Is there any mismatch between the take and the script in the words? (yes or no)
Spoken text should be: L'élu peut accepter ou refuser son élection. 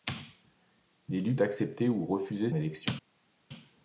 yes